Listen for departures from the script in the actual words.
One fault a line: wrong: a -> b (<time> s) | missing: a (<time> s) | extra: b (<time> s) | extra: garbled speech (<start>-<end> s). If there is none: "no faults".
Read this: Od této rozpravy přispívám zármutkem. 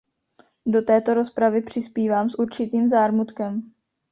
wrong: Od -> Do (0.7 s)
extra: s určitým (2.3 s)